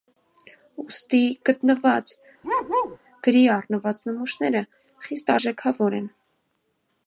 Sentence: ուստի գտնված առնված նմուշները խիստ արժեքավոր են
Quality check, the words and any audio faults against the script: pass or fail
fail